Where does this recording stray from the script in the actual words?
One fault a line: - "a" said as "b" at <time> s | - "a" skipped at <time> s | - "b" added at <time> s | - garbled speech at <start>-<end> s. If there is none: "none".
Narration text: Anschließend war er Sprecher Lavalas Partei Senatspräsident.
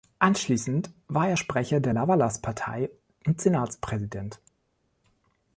- "der" added at 1.8 s
- "und" added at 3.2 s